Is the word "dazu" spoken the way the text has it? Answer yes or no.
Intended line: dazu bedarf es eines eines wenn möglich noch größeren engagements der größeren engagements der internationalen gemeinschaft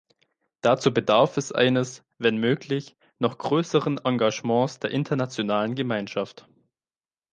yes